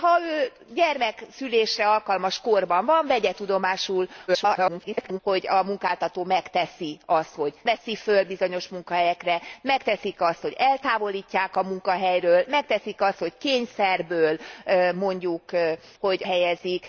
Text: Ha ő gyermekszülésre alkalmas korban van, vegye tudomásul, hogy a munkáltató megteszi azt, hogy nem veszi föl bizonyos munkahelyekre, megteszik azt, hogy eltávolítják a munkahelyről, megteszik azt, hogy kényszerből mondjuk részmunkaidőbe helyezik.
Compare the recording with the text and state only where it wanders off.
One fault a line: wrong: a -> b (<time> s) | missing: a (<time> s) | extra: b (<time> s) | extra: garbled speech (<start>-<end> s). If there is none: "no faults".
extra: garbled speech (4.3-5.2 s)
missing: nem (7.5 s)
wrong: részmunkaidőbe -> hogy (16.0 s)